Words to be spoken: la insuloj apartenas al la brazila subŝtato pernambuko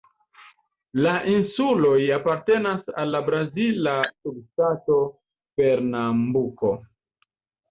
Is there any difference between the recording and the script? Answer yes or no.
no